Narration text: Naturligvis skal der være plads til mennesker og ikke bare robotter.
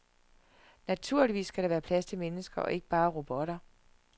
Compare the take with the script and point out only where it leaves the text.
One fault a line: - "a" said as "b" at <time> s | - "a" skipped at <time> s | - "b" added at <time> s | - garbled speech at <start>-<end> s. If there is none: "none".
none